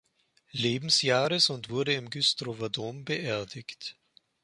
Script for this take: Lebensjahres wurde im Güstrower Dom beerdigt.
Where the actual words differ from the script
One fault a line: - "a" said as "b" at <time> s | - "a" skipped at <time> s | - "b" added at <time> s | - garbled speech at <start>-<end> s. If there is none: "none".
- "und" added at 1.5 s